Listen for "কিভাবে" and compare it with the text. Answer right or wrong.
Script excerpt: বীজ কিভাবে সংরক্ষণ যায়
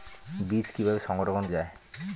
right